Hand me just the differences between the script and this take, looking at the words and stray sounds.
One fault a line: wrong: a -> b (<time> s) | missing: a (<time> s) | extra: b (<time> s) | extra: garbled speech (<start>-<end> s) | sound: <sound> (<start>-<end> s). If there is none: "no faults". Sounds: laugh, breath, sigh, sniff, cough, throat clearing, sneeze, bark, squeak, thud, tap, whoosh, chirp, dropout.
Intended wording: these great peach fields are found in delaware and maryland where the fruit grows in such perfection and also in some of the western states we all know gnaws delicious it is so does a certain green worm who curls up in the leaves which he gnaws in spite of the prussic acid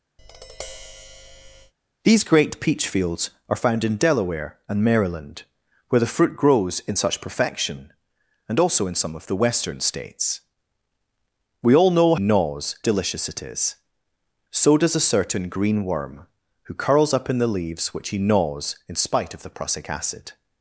sound: tap (0.2-1.7 s)